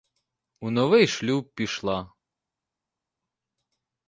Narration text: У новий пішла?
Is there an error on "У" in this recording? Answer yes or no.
no